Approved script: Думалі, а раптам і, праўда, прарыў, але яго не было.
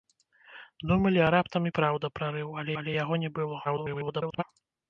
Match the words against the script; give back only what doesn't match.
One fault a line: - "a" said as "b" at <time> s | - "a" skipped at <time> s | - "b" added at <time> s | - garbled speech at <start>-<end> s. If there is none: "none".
- "але" added at 2.8 s
- garbled speech at 3.6-4.4 s